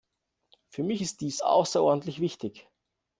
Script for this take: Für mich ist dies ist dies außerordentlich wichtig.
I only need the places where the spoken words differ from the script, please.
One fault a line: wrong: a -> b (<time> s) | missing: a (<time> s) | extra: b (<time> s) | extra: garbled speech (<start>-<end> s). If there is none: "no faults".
missing: ist dies (1.4 s)